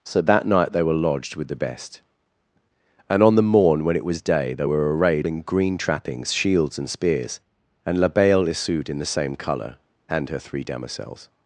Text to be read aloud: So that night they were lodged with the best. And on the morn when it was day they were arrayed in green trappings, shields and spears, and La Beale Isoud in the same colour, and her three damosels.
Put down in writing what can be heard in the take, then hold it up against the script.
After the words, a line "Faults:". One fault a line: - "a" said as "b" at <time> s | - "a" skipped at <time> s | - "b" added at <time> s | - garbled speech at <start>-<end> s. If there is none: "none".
So that night they were lodged with the best. And on the morn when it was day they were arrayed in green trappings, shields and spears, and La Beale Isoud in the same colour, and her three damosels.
Faults:
none